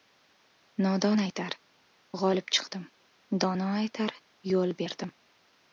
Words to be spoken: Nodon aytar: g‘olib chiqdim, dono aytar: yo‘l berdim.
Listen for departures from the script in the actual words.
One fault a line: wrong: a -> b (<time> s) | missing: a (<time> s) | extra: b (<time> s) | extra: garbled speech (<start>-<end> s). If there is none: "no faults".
no faults